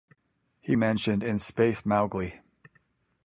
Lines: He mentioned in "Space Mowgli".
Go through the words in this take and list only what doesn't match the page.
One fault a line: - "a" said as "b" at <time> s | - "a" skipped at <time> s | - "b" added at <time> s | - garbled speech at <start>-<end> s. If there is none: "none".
none